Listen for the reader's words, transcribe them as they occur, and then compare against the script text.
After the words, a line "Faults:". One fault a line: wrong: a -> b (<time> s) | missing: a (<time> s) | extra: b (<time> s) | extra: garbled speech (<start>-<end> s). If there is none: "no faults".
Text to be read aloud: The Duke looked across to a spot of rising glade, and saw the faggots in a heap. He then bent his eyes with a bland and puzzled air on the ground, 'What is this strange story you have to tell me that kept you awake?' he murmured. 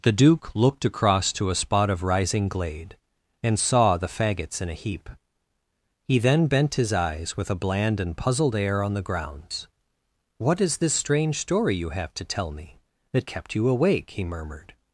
The Duke looked across to a spot of rising glade, and saw the faggots in a heap. He then bent his eyes with a bland and puzzled air on the grounds, 'What is this strange story you have to tell me that kept you awake?' he murmured.
Faults:
wrong: ground -> grounds (9.0 s)